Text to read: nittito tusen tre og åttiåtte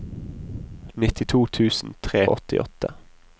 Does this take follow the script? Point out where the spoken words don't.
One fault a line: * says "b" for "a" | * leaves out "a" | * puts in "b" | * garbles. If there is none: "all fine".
all fine